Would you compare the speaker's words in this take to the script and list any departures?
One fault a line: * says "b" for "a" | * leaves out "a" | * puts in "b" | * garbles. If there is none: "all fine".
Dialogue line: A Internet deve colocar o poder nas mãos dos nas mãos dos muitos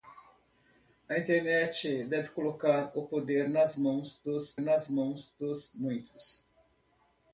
all fine